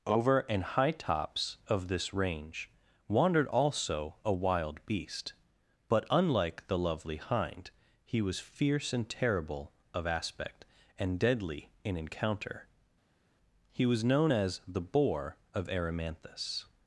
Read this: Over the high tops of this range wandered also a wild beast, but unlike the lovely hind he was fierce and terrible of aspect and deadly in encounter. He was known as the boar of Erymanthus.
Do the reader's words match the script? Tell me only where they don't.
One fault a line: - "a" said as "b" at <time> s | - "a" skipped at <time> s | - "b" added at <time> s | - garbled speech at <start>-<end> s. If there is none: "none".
- "the" said as "an" at 0.4 s